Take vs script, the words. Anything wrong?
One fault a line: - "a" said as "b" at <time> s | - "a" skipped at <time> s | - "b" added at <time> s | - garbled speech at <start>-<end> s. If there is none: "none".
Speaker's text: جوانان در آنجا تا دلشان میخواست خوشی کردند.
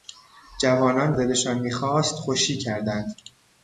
- "در آنجا تا" skipped at 1.1 s